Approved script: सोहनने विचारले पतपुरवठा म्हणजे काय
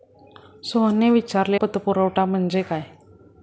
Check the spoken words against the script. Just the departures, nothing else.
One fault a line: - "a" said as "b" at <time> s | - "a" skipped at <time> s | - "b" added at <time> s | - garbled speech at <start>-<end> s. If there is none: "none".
none